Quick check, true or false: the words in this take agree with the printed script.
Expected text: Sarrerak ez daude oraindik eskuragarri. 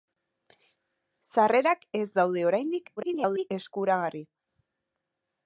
false